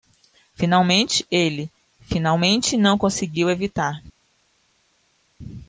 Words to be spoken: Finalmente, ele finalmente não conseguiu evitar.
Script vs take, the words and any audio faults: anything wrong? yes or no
no